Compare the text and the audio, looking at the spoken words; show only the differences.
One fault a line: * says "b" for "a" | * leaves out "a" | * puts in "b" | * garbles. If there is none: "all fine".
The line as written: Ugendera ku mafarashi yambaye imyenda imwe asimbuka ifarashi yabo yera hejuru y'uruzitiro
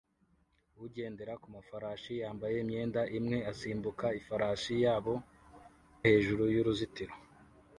* leaves out "yera"